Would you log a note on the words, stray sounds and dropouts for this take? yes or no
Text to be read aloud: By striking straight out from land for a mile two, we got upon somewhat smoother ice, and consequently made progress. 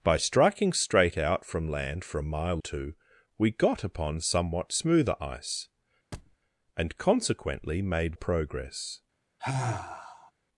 yes